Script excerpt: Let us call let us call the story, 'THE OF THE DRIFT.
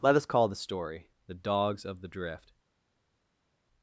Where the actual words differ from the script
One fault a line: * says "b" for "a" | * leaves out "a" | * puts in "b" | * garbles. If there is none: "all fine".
* leaves out "let us call"
* puts in "DOGS"